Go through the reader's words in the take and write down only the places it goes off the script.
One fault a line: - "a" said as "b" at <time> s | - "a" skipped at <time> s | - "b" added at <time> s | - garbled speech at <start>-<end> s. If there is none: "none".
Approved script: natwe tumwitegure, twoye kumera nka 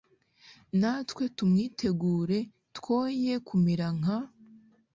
none